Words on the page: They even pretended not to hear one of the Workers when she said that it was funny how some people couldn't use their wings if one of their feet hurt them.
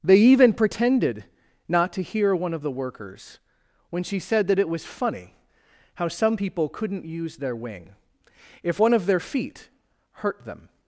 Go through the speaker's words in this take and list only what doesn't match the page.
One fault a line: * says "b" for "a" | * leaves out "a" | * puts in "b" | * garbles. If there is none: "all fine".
* says "wing" for "wings"